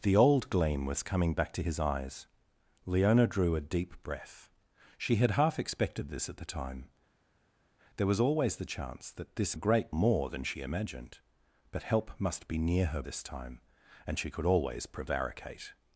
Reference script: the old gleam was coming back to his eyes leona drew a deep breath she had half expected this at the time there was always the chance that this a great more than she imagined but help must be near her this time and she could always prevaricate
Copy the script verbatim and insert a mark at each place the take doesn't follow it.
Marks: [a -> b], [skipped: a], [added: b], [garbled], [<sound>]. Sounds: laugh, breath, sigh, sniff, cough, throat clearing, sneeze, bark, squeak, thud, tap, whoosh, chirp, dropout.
the old gleam was coming back to his eyes leona drew a deep breath she had half expected this at the time there was always the chance that this a great more than she imagined but help must be near her this time and she could always prevaricate